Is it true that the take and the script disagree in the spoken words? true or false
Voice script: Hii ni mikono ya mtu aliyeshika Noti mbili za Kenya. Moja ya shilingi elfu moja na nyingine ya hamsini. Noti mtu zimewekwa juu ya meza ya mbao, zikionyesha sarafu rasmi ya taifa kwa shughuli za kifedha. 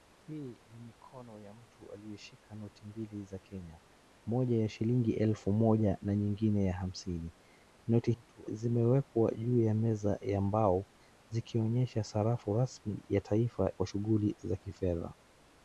false